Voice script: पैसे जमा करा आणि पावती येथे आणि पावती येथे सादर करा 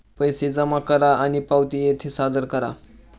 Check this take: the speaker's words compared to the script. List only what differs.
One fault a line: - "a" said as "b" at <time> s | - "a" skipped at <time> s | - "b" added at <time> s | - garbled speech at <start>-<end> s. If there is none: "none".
- "आणि पावती येथे" skipped at 2.1 s